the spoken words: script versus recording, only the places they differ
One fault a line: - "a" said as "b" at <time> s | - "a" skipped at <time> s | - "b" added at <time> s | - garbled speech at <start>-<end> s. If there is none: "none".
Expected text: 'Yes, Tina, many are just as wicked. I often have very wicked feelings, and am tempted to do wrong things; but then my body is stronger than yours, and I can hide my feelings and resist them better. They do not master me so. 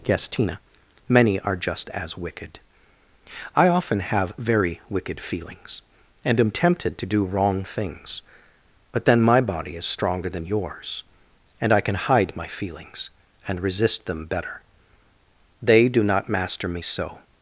none